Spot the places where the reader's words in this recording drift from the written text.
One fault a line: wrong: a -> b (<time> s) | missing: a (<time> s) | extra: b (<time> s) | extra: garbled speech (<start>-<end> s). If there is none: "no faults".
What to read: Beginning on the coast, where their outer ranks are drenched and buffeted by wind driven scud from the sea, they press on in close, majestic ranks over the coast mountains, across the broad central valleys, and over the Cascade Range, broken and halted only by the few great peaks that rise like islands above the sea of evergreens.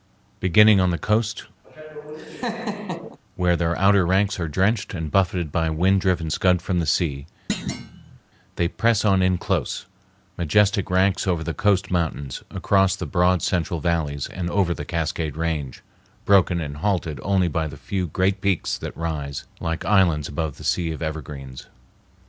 no faults